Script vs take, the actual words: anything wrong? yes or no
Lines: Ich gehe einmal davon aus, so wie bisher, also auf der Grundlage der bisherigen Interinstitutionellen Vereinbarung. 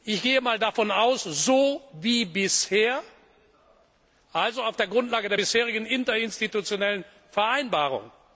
no